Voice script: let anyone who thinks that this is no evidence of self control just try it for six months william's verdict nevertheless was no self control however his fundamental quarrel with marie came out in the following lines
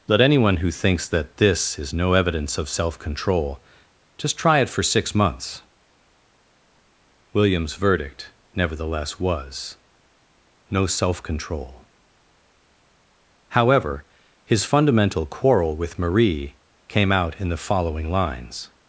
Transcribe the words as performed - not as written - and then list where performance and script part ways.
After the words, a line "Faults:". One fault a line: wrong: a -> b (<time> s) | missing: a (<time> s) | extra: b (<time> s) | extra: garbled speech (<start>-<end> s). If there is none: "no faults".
let anyone who thinks that this is no evidence of self control just try it for six months william's verdict nevertheless was no self control however his fundamental quarrel with marie came out in the following lines
Faults:
no faults